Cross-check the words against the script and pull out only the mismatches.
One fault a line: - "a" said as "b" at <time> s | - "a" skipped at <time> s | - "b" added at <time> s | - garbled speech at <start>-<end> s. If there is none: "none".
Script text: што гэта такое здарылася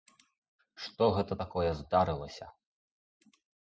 none